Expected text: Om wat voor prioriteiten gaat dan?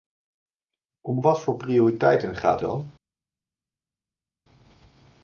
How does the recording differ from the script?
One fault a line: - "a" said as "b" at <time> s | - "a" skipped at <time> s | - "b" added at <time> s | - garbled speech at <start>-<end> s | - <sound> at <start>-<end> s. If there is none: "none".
none